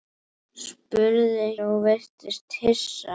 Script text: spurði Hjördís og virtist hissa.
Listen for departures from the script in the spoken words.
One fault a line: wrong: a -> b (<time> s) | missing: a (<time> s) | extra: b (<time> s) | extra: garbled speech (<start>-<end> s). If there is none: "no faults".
missing: Hjördís (1.4 s)